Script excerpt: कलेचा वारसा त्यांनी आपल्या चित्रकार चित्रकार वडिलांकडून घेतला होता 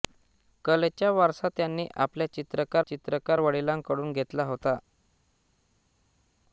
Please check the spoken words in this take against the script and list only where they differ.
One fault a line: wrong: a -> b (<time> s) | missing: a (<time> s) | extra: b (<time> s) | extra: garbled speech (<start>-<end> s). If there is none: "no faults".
no faults